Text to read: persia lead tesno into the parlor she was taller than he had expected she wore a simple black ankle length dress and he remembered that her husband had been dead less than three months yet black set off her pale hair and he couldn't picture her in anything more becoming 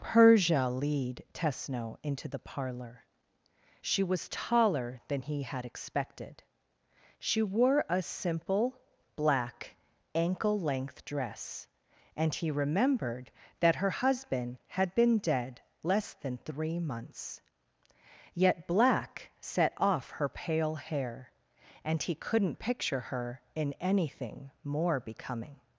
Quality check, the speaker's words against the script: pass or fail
pass